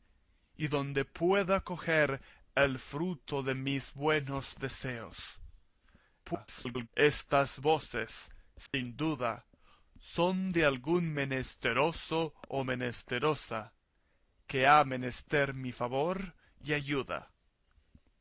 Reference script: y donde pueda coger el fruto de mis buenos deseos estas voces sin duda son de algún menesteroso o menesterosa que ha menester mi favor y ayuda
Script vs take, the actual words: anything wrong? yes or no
yes